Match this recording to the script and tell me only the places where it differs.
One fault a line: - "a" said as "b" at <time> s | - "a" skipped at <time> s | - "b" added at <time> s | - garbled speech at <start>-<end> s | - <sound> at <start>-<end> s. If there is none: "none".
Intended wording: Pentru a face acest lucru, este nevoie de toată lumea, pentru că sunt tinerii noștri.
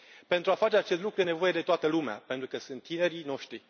- "este" skipped at 1.2 s